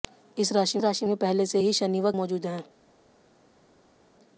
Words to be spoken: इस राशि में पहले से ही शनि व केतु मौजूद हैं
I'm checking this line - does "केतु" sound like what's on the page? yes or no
no